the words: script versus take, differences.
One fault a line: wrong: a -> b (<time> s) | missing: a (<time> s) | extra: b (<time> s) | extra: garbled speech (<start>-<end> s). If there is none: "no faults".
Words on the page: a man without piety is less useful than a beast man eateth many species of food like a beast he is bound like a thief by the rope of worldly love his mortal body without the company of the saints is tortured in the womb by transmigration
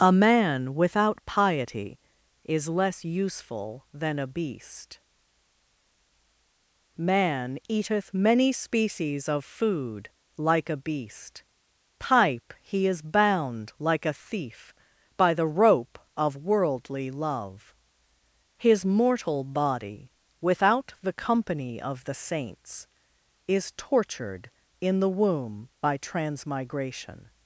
extra: pipe (12.0 s)